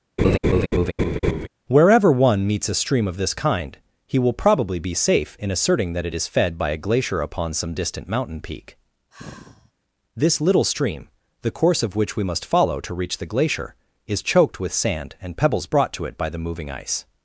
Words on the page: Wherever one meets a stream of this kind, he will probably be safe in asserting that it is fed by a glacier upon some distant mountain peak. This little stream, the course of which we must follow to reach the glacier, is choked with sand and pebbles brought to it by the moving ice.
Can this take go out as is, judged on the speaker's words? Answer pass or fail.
pass